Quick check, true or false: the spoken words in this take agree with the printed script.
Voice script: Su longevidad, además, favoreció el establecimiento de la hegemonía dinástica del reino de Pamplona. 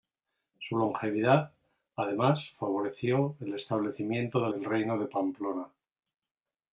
false